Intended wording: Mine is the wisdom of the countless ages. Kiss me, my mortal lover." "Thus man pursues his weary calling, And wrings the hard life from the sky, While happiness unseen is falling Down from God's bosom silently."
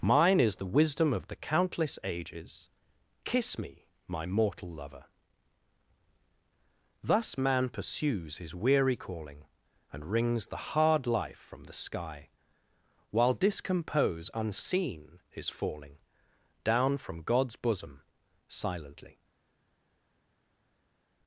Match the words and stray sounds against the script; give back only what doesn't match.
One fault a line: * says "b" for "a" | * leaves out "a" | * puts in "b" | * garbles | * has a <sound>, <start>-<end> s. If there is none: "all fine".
* says "discompose" for "happiness"